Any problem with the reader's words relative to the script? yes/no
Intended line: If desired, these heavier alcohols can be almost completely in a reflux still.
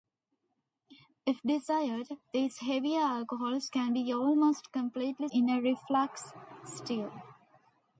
no